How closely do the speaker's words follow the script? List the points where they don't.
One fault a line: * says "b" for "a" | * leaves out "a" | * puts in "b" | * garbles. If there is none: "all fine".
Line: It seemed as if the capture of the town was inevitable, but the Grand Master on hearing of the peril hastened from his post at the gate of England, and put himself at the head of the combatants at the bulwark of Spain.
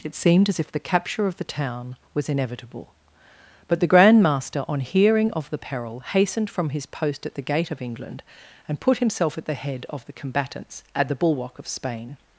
all fine